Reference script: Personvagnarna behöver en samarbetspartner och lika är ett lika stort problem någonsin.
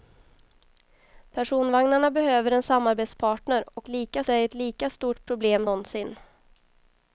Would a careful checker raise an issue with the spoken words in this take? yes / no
no